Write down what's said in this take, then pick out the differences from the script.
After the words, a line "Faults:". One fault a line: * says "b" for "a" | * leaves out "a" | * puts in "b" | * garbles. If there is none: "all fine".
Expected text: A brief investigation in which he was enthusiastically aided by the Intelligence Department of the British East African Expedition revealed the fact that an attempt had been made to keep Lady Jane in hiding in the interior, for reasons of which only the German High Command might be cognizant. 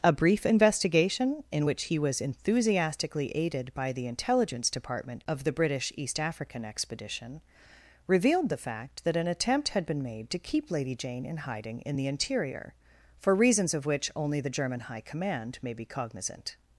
A brief investigation in which he was enthusiastically aided by the Intelligence Department of the British East African Expedition revealed the fact that an attempt had been made to keep Lady Jane in hiding in the interior, for reasons of which only the German High Command may be cognizant.
Faults:
* says "may" for "might"